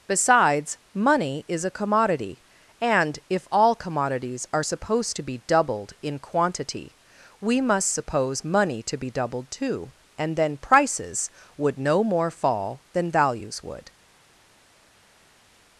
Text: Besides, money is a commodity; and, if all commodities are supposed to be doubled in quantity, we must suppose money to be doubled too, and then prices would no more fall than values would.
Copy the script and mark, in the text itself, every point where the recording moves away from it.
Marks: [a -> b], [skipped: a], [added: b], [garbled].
Besides, money is a commodity; and, if all commodities are supposed to be doubled in quantity, we must suppose money to be doubled too, and then prices would no more fall than values would.